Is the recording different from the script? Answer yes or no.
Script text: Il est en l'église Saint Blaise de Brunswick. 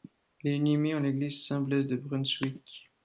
yes